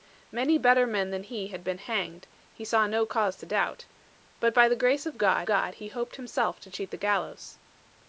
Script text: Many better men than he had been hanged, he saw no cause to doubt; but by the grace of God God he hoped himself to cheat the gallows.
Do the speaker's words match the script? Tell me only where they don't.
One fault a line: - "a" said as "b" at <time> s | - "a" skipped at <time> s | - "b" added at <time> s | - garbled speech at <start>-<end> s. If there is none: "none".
none